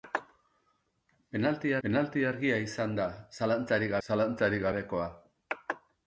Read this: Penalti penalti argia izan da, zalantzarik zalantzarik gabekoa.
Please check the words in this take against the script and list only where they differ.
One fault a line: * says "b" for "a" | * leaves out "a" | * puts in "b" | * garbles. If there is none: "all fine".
all fine